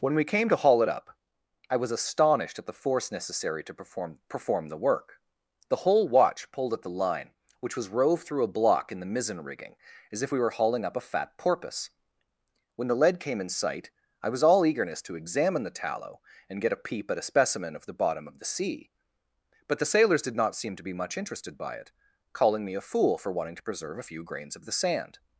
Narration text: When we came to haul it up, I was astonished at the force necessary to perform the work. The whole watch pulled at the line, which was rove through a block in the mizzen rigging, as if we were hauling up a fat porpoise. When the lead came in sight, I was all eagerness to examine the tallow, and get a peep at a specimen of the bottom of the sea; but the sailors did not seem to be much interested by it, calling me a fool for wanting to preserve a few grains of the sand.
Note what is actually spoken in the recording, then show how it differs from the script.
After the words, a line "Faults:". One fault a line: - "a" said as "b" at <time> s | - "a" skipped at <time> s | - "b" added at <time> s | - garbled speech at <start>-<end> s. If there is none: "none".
When we came to haul it up, I was astonished at the force necessary to perform perform the work. The whole watch pulled at the line, which was rove through a block in the mizzen rigging, as if we were hauling up a fat porpoise. When the lead came in sight, I was all eagerness to examine the tallow, and get a peep at a specimen of the bottom of the sea; but the sailors did not seem to be much interested by it, calling me a fool for wanting to preserve a few grains of the sand.
Faults:
- "perform" added at 4.3 s